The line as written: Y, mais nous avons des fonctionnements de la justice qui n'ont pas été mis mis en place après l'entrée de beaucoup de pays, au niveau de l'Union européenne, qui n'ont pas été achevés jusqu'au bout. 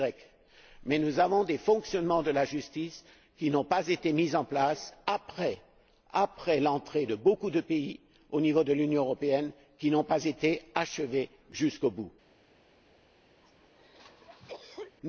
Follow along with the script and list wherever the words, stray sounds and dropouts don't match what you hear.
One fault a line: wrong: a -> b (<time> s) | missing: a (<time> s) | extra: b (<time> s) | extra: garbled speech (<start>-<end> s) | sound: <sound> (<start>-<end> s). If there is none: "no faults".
missing: mis (4.3 s)
sound: cough (13.4-15.0 s)